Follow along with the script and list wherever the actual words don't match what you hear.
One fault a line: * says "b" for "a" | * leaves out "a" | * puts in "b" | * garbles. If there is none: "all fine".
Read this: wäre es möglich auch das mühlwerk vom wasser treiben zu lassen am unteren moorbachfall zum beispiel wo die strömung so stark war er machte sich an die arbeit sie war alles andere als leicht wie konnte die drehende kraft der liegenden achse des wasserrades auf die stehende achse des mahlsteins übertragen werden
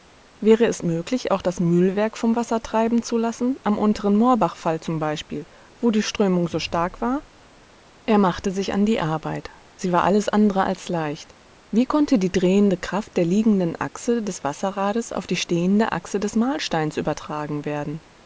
all fine